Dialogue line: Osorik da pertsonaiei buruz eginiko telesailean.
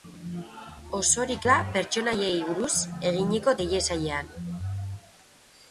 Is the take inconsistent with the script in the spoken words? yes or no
no